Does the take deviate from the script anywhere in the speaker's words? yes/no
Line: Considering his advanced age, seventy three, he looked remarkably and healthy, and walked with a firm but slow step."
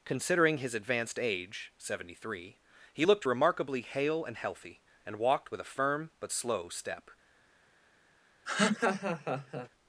yes